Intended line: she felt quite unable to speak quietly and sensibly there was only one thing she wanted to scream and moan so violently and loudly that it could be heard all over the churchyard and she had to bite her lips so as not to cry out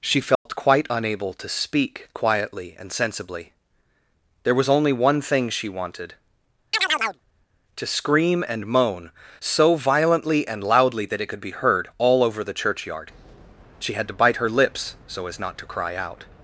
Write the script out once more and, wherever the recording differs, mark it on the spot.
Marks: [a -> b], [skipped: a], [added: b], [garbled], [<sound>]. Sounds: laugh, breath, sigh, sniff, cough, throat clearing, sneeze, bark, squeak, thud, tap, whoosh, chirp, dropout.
she felt [dropout] quite unable to speak quietly and sensibly there was only one thing she wanted [chirp] to scream and moan so violently and loudly that it could be heard all over the churchyard [skipped: and] she had to bite her lips so as not to cry out